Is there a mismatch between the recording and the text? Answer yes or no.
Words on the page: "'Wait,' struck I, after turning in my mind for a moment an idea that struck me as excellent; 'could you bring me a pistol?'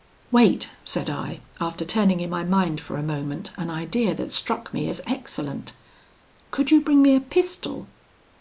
yes